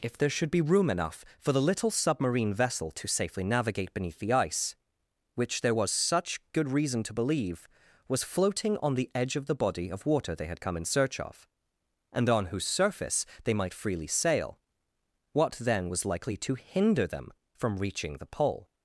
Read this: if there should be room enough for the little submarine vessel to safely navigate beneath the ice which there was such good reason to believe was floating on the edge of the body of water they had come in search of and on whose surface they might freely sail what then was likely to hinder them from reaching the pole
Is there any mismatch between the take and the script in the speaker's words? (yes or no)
no